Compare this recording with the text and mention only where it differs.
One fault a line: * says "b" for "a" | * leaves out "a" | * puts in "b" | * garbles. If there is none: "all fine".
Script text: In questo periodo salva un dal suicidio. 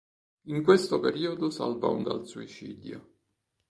all fine